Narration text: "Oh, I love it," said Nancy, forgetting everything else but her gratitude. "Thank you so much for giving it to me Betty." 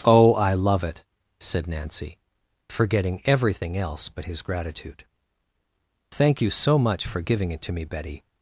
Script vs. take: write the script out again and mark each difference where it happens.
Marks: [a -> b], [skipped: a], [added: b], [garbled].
"Oh, I love it," said Nancy, forgetting everything else but [her -> his] gratitude. "Thank you so much for giving it to me Betty."